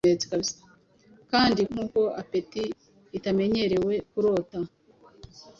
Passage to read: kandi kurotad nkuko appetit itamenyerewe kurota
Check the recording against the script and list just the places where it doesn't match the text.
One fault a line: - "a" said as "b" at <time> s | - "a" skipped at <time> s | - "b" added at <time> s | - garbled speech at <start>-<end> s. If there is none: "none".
- "kurotad" skipped at 1.6 s